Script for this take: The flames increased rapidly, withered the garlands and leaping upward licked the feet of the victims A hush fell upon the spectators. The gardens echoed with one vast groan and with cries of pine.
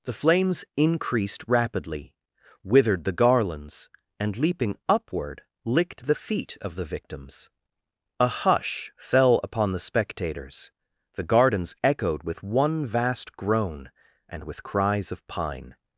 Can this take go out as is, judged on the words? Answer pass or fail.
pass